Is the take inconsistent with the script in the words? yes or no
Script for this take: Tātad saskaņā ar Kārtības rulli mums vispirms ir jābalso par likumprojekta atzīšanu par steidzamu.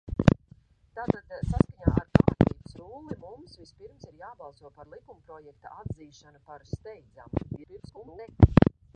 yes